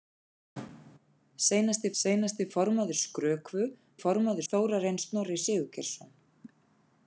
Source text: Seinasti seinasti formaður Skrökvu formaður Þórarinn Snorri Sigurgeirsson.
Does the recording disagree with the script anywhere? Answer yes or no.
no